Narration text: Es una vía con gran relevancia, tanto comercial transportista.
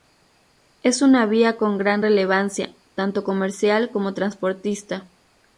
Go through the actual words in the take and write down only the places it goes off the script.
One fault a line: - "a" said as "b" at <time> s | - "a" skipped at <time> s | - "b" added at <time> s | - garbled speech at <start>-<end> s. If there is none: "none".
- "como" added at 3.9 s